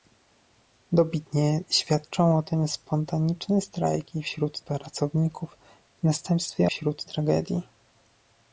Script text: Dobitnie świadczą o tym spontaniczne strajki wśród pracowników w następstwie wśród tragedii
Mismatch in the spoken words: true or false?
false